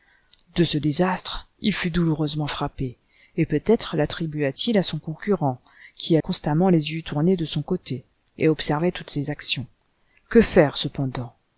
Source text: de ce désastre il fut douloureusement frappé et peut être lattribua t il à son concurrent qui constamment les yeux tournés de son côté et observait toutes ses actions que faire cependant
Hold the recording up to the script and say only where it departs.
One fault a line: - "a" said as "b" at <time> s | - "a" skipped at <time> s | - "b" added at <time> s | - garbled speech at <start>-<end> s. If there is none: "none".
none